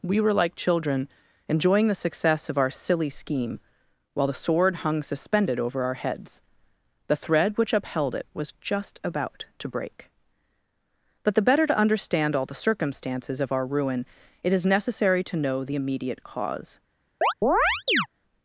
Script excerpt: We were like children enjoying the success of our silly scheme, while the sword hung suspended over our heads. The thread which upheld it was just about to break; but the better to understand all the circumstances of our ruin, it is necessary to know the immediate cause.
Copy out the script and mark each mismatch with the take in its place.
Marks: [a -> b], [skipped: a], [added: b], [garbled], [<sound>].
We were like children enjoying the success of our silly scheme, while the sword hung suspended over our heads. The thread which upheld it was just about to break; but the better to understand all the circumstances of our ruin, it is necessary to know the immediate cause. [chirp]